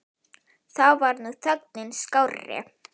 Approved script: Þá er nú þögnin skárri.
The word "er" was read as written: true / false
false